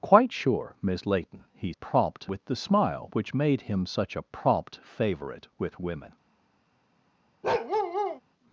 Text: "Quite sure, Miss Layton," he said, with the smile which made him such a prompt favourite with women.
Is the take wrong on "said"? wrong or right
wrong